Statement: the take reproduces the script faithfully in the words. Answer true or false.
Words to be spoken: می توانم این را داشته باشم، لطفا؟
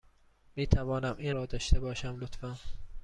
true